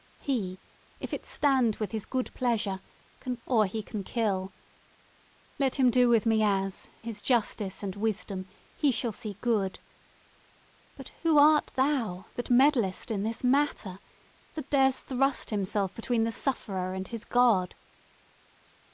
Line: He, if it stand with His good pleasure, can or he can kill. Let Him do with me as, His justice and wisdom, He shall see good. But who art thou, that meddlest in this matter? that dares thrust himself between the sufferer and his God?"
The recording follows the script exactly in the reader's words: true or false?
true